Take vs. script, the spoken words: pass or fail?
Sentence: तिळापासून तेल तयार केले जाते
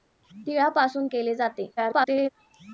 fail